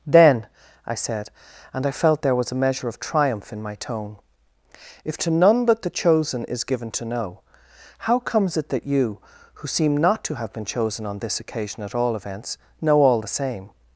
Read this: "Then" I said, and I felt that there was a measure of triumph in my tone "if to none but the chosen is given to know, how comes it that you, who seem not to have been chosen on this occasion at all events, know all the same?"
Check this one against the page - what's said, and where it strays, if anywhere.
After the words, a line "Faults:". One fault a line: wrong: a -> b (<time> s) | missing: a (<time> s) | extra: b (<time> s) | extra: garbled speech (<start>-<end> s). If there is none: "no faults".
"Then" I said, and I felt there was a measure of triumph in my tone "if to none but the chosen is given to know, how comes it that you, who seem not to have been chosen on this occasion at all events, know all the same?"
Faults:
missing: that (2.2 s)